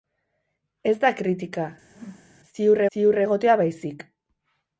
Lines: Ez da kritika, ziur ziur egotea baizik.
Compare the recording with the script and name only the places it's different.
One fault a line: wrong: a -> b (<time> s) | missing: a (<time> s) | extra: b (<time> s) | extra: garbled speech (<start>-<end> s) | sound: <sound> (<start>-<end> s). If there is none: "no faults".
sound: whoosh (1.8-2.4 s)